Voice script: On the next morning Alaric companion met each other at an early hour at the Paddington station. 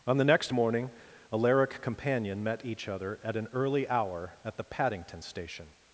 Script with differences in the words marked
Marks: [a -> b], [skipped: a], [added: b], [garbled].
On the next morning Alaric companion met each other at an early hour at the Paddington station.